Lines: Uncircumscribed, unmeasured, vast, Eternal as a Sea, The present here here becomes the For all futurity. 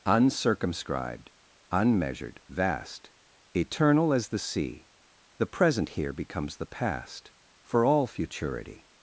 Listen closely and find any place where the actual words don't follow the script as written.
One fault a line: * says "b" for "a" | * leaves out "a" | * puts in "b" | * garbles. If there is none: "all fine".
* says "the" for "a"
* leaves out "here"
* puts in "past"